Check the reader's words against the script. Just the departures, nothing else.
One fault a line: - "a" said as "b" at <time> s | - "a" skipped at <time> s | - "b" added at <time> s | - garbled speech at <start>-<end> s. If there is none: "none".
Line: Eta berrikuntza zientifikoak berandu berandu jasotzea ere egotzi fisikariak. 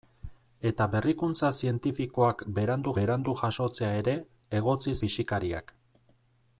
none